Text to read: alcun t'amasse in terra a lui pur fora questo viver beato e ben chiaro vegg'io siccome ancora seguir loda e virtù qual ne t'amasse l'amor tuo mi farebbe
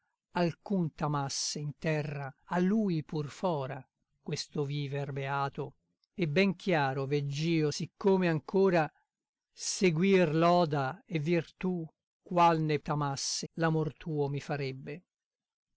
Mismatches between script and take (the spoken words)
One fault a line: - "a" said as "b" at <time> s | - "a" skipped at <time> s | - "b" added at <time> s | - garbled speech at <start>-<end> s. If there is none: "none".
none